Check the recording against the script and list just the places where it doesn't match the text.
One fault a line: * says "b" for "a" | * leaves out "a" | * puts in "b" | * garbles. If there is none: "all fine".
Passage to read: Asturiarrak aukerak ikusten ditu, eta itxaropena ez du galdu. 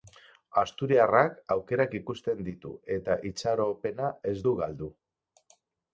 all fine